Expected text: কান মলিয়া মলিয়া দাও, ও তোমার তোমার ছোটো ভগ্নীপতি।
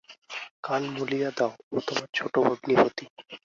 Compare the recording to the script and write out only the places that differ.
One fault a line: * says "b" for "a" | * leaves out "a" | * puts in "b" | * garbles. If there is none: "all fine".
* leaves out "মলিয়া"
* leaves out "তোমার"